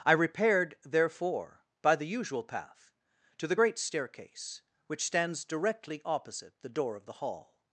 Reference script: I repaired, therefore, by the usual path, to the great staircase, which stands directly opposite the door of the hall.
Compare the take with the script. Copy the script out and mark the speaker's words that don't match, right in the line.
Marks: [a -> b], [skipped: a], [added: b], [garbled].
I repaired, therefore, by the usual path, to the great staircase, which stands directly opposite the door of the hall.